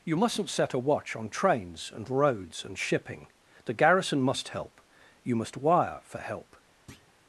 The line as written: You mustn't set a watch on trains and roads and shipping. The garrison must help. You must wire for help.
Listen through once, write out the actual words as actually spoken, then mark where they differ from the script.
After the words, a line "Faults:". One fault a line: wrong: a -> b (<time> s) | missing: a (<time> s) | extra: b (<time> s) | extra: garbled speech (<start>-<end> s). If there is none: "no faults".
You mustn't set a watch on trains and roads and shipping. The garrison must help. You must wire for help.
Faults:
no faults